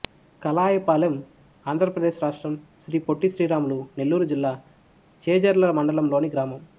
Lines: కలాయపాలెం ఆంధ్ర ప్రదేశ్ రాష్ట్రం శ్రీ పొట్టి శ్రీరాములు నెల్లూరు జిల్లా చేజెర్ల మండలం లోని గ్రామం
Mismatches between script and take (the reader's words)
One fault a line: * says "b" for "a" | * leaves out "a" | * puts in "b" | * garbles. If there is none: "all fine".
all fine